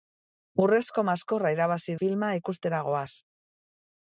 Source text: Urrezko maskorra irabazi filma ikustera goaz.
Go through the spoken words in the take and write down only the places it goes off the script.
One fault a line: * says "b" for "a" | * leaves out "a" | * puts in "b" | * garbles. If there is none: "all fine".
all fine